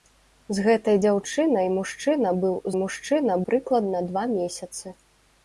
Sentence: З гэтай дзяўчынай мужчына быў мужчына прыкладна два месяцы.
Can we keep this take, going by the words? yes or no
yes